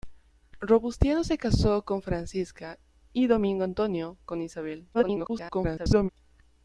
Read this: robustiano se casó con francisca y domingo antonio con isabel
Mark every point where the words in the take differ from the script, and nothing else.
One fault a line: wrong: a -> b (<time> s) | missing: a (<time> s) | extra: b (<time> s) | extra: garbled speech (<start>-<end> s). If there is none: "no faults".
extra: garbled speech (4.9-6.1 s)